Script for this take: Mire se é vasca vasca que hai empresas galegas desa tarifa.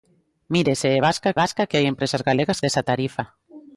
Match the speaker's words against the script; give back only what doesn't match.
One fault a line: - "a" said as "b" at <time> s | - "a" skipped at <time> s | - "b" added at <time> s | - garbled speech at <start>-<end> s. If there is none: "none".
none